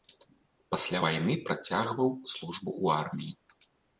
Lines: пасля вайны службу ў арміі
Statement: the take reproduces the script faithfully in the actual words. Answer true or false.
false